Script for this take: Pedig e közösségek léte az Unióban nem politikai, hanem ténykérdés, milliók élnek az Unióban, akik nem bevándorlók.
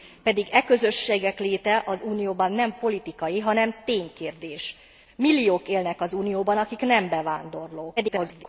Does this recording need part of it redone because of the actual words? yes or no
yes